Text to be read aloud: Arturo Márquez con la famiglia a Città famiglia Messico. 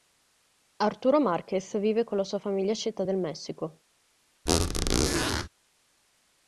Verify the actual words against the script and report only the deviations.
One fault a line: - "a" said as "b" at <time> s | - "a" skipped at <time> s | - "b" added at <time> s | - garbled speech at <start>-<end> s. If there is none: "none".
- "vive" added at 1.8 s
- "sua" added at 2.2 s
- "famiglia" said as "del" at 3.0 s